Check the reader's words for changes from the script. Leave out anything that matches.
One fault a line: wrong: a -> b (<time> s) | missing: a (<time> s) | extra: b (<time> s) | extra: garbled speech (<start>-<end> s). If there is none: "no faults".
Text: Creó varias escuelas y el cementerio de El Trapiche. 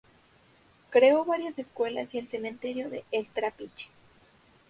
no faults